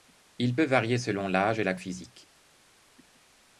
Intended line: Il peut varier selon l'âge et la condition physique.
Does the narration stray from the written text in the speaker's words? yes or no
yes